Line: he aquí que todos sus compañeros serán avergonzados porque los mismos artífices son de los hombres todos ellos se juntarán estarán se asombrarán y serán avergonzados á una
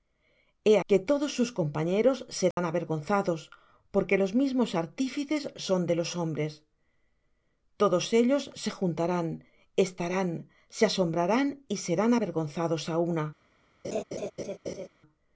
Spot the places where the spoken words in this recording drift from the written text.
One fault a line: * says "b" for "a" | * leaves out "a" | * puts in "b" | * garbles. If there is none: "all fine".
* leaves out "aquí"